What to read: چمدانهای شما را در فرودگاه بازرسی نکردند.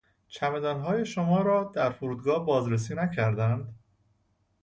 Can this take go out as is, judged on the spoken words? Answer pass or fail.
pass